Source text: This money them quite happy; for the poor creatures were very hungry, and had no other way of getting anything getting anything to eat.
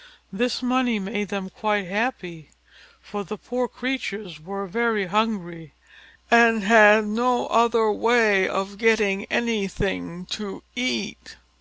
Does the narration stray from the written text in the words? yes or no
yes